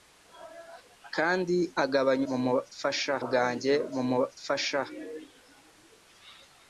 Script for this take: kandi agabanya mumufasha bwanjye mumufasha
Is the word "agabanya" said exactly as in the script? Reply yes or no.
yes